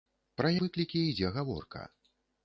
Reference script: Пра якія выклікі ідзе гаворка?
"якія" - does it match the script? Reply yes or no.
no